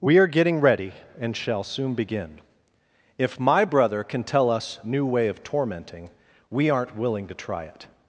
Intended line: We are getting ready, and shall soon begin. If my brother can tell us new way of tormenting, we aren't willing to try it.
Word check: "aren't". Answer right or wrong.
right